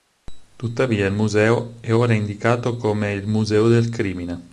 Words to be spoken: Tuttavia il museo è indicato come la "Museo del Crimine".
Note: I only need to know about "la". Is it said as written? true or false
false